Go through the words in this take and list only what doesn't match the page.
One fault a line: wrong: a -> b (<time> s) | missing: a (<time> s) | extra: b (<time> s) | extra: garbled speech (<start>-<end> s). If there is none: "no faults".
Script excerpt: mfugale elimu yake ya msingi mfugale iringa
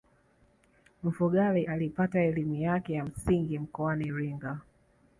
extra: alipata (1.6 s)
wrong: mfugale -> mkoani (3.6 s)